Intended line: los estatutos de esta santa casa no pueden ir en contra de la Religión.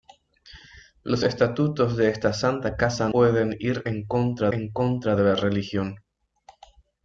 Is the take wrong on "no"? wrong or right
wrong